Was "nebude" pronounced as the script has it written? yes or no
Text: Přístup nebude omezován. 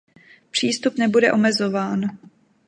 yes